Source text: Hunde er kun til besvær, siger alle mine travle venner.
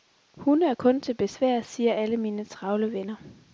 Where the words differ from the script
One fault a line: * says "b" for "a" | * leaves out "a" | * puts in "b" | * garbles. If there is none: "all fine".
all fine